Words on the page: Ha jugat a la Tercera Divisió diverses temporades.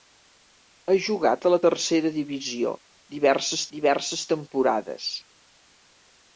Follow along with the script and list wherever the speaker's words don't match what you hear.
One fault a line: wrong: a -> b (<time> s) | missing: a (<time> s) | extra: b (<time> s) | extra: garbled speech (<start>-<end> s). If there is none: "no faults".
extra: diverses (3.8 s)